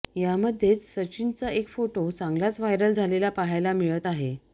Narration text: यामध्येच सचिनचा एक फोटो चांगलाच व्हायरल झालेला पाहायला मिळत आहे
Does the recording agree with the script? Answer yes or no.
yes